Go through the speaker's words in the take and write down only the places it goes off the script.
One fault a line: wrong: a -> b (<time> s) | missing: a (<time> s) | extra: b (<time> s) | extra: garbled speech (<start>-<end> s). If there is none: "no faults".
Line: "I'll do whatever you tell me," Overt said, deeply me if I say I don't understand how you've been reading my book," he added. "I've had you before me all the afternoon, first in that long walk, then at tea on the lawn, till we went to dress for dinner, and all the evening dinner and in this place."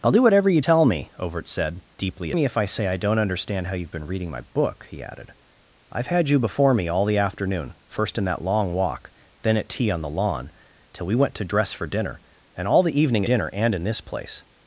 no faults